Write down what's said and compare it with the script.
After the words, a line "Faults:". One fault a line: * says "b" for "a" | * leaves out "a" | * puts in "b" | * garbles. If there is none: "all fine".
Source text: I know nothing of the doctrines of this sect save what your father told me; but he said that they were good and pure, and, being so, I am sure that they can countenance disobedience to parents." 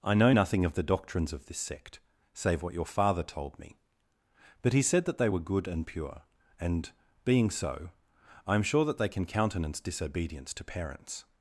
I know nothing of the doctrines of this sect save what your father told me; but he said that they were good and pure, and, being so, I am sure that they can countenance disobedience to parents."
Faults:
all fine